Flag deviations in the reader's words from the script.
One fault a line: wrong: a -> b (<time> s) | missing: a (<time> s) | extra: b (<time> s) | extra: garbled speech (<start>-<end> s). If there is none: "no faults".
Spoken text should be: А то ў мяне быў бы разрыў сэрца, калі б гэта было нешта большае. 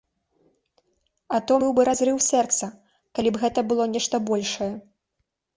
missing: мяне (1.6 s)